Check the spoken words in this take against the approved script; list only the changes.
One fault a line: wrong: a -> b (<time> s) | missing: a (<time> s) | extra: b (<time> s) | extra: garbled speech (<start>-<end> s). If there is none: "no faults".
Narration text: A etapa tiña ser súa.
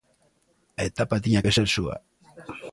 extra: que (1.4 s)